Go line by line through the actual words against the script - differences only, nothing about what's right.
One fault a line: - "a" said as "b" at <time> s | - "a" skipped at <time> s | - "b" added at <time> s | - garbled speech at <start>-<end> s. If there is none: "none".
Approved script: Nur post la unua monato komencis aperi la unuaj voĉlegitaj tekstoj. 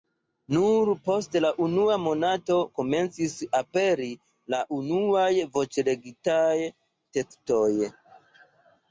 none